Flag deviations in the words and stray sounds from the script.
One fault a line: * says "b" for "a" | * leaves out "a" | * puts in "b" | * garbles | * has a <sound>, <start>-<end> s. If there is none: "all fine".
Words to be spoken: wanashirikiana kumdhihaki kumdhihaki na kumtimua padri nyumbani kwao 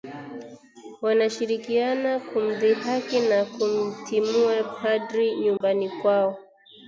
* leaves out "kumdhihaki"
* has a dropout, 5.6-5.6 s